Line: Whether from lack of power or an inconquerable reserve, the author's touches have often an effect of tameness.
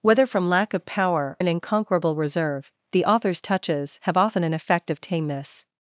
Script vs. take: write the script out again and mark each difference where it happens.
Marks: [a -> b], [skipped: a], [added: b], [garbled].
Whether from lack of power [skipped: or] an inconquerable reserve, the author's touches have often an effect of tameness.